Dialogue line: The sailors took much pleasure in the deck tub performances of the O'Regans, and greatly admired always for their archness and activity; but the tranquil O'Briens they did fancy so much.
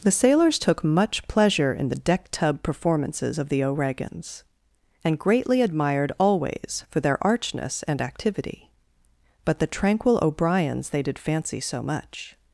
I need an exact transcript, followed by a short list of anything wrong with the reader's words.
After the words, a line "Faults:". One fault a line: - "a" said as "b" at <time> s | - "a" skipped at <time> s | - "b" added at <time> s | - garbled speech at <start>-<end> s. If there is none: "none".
The sailors took much pleasure in the deck tub performances of the O'Regans, and greatly admired always for their archness and activity; but the tranquil O'Briens they did fancy so much.
Faults:
none